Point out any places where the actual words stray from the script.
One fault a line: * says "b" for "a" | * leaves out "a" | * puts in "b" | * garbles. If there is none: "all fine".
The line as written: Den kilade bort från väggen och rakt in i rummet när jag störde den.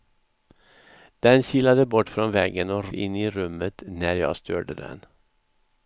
* leaves out "rakt"